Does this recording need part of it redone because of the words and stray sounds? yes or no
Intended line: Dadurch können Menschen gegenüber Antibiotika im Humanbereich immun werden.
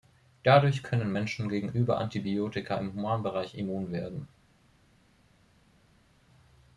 no